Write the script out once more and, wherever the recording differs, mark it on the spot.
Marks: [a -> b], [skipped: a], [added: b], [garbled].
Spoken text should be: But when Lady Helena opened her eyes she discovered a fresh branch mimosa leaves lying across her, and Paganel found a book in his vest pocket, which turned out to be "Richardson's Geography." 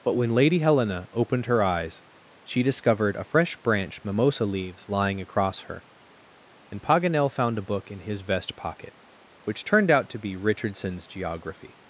But when Lady Helena opened her eyes she discovered a fresh branch mimosa leaves lying across her, and Paganel found a book in his vest pocket, which turned out to be "Richardson's Geography."